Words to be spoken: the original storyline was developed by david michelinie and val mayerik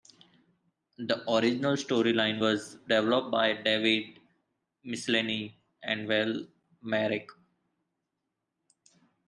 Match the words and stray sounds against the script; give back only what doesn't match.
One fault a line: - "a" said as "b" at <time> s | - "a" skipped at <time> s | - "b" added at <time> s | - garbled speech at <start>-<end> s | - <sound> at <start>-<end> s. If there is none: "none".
none